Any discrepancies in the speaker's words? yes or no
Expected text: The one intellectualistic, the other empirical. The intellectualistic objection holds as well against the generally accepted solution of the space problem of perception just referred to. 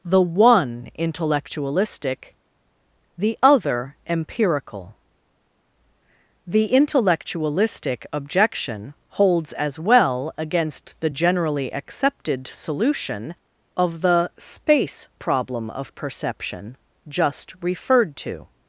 no